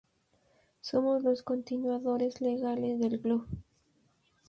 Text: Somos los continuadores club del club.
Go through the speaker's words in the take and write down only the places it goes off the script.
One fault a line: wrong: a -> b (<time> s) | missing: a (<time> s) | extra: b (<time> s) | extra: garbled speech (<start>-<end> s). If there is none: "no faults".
wrong: club -> legales (2.4 s)